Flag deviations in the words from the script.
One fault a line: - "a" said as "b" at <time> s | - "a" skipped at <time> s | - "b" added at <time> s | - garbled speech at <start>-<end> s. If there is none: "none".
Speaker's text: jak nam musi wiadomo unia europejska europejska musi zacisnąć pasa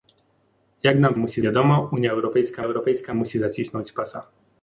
none